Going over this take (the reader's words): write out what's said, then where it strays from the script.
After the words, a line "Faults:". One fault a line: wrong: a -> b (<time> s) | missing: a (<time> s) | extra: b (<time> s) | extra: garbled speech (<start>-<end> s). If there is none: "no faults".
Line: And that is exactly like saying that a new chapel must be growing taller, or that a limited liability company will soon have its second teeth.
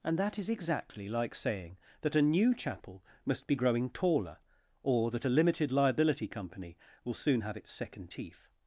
And that is exactly like saying that a new chapel must be growing taller, or that a limited liability company will soon have its second teeth.
Faults:
no faults